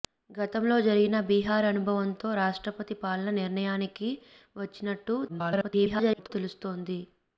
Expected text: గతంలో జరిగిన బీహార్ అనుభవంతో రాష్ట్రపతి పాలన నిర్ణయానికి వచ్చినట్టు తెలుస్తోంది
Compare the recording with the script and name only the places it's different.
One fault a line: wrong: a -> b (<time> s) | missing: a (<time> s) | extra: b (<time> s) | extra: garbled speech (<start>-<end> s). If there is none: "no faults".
extra: garbled speech (5.3-6.3 s)